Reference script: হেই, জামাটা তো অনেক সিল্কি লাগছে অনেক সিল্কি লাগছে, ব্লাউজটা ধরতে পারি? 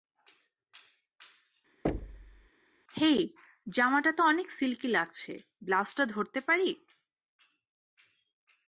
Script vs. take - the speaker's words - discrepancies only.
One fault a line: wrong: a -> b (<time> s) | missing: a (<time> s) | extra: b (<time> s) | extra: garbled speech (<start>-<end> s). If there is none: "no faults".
missing: অনেক সিল্কি লাগছে (5.3 s)